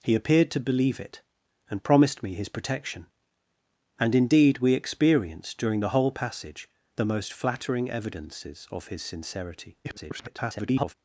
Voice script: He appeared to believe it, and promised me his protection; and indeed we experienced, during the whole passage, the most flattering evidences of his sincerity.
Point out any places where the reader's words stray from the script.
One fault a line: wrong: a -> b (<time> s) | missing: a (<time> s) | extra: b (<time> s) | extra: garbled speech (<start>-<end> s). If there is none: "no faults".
extra: garbled speech (9.8-10.9 s)